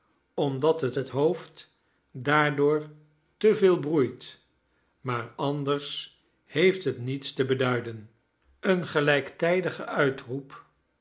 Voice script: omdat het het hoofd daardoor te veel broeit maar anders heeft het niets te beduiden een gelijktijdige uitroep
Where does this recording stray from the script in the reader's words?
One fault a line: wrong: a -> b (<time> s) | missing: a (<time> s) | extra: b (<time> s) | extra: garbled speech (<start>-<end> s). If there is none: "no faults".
no faults